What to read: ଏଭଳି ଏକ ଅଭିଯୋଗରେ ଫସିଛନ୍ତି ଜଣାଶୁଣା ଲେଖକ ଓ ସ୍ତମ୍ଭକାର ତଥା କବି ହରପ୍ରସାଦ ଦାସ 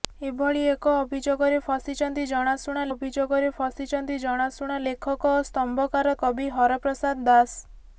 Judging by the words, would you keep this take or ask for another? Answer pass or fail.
fail